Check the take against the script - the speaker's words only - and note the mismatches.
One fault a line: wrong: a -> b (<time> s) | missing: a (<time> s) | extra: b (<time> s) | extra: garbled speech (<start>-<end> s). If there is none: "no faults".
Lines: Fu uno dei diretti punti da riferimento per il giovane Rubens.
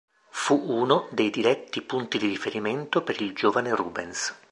wrong: da -> di (2.2 s)